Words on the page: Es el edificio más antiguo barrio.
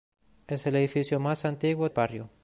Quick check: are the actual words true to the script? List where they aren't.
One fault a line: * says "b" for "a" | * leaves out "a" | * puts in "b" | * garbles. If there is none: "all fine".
all fine